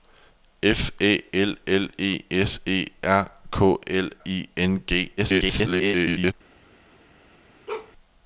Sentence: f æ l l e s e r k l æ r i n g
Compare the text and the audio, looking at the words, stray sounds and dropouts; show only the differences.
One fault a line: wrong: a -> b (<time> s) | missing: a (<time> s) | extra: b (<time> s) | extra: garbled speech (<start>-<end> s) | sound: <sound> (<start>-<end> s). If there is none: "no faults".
missing: æ r (4.1 s)
extra: garbled speech (5.2-6.3 s)
sound: bark (7.7-7.9 s)